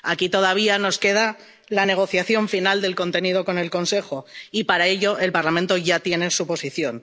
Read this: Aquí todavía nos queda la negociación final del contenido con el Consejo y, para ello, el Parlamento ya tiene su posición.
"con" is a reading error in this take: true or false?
false